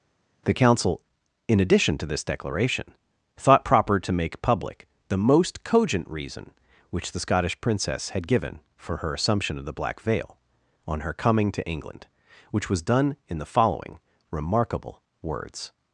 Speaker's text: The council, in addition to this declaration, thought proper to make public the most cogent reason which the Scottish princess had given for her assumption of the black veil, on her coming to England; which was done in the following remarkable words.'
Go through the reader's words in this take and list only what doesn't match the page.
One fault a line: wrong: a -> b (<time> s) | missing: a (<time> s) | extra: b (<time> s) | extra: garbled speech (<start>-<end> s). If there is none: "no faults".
no faults